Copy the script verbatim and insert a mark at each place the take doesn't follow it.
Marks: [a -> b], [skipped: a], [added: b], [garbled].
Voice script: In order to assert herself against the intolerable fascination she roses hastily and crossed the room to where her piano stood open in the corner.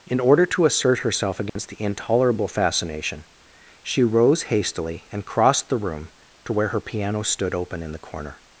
In order to assert herself against the intolerable fascination she [roses -> rose] hastily and crossed the room to where her piano stood open in the corner.